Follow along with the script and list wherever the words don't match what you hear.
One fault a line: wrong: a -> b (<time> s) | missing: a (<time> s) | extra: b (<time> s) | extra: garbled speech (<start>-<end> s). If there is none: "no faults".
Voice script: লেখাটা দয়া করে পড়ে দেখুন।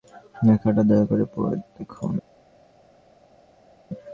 no faults